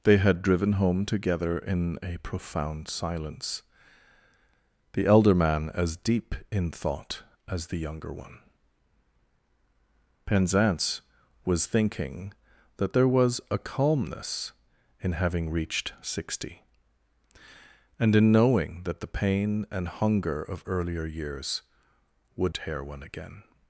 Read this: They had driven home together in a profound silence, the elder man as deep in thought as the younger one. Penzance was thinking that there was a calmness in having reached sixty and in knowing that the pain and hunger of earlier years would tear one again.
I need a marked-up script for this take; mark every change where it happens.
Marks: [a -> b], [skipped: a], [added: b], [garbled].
They had driven home together in a profound silence, the elder man as deep in thought as the younger one. Penzance was thinking that there was a calmness in having reached sixty and in knowing that the pain and hunger of earlier years would tear one again.